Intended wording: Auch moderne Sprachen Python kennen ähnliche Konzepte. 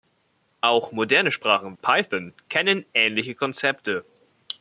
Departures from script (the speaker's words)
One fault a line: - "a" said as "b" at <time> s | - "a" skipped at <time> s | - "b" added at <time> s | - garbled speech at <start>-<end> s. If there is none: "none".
none